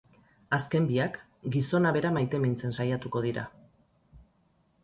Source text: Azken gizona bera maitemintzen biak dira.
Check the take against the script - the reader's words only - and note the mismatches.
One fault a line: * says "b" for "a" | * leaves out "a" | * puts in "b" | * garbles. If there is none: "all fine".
* puts in "biak"
* says "saiatuko" for "biak"